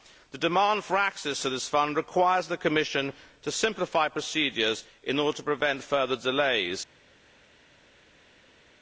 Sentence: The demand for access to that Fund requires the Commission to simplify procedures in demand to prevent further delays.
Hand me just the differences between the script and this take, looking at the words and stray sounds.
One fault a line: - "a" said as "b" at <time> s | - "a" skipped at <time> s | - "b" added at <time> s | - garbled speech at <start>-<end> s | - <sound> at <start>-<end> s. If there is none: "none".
- "that" said as "this" at 1.5 s
- "demand" said as "order" at 5.2 s